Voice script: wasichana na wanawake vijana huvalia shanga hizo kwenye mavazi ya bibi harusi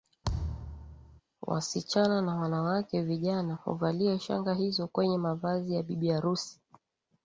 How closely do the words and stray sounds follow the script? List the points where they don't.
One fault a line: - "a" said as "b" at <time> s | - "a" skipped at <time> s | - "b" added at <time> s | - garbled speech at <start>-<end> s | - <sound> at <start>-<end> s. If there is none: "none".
- thud at 0.2-1.2 s